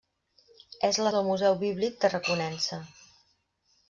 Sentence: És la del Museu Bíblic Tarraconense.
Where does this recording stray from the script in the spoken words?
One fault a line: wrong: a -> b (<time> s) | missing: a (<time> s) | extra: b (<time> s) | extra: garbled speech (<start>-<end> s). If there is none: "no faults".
no faults